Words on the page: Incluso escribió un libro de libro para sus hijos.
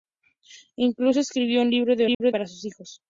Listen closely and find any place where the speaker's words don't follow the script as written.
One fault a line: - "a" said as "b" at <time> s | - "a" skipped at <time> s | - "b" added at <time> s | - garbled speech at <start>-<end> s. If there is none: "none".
none